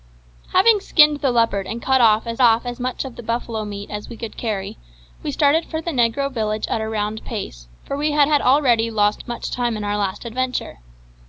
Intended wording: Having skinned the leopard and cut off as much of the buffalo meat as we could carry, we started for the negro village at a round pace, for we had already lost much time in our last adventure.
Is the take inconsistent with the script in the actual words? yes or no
yes